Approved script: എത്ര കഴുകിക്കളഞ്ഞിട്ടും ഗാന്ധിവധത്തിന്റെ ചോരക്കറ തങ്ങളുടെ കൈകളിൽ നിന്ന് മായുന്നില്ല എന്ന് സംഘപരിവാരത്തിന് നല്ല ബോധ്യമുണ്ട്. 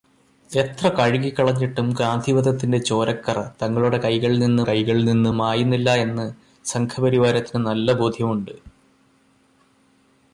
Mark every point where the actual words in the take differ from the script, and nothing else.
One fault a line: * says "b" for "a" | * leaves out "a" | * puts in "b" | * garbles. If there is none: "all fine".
* puts in "കൈകളിൽ നിന്ന്"